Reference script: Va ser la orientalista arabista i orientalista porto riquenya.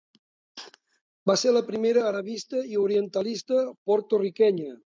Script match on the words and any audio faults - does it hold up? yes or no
no